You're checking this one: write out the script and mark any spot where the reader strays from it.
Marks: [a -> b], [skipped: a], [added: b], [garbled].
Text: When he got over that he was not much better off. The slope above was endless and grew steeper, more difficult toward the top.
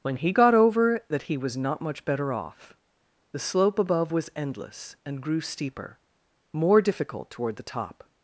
When he got over that he was not much better off. The slope above was endless and grew steeper, more difficult toward the top.